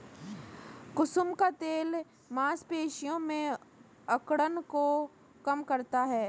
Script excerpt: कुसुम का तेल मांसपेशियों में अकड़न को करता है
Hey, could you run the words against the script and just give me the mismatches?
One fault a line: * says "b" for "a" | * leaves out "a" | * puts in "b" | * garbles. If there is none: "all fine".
* puts in "कम"